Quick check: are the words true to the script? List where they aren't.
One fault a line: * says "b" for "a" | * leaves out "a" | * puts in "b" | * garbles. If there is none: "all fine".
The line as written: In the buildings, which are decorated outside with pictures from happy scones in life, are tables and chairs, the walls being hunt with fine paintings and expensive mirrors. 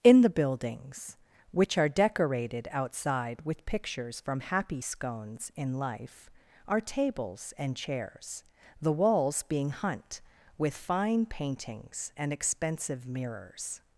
all fine